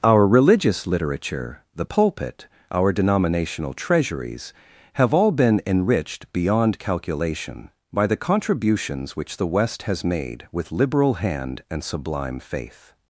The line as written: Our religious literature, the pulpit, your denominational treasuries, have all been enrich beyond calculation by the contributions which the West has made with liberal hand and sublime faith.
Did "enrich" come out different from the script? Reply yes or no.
yes